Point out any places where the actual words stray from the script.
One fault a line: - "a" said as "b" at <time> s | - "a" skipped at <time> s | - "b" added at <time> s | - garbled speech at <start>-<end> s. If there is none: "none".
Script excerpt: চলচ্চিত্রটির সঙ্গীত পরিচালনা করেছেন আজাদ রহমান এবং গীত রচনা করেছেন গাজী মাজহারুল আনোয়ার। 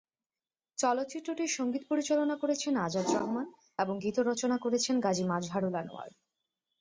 none